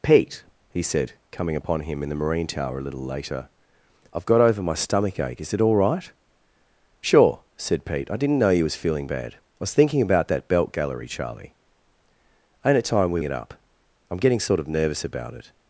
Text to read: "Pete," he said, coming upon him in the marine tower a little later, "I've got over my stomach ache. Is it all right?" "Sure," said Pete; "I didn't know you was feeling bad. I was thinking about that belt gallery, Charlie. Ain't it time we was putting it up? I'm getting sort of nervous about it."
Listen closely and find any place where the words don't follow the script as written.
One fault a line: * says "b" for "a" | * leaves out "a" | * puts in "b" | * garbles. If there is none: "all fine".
* leaves out "was putting"